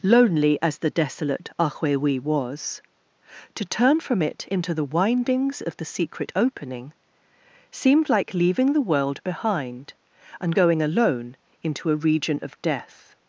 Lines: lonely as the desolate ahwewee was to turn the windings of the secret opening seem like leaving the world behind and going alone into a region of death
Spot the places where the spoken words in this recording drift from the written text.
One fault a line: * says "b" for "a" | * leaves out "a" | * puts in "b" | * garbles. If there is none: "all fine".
* puts in "from it into"
* says "seemed" for "seem"